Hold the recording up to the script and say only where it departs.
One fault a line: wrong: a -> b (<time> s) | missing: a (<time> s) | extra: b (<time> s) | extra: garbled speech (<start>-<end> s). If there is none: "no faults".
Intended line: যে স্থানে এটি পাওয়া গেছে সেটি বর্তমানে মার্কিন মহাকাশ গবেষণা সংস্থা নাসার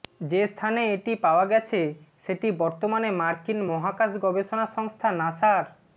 no faults